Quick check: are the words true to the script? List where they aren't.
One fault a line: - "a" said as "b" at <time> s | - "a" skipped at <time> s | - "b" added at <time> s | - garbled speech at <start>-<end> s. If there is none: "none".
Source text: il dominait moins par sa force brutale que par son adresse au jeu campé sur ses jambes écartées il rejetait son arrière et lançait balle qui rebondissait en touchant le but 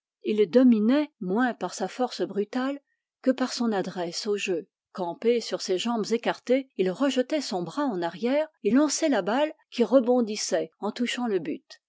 - "bras en" added at 7.6 s
- "la" added at 9.1 s